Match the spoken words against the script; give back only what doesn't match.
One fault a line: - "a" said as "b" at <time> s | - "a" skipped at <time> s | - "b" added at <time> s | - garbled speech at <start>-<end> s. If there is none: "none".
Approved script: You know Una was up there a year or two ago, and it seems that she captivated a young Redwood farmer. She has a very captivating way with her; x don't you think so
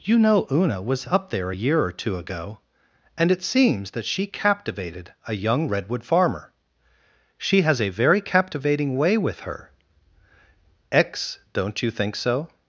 none